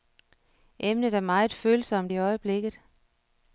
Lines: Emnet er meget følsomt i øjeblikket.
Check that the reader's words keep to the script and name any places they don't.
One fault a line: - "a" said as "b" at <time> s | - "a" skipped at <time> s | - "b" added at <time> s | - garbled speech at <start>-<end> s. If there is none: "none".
none